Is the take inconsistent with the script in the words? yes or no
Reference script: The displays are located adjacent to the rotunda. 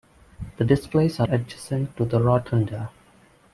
yes